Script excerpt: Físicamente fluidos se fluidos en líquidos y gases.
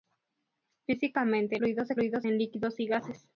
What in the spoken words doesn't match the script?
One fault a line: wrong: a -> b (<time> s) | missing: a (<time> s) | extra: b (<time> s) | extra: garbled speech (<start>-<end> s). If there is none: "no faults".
no faults